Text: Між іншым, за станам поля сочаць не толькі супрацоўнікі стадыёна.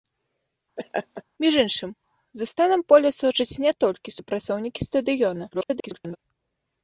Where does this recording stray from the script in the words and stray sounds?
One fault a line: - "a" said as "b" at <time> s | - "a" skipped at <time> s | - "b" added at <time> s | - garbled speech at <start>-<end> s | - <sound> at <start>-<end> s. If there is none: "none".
- laugh at 0.8-1.2 s
- garbled speech at 5.5-6.2 s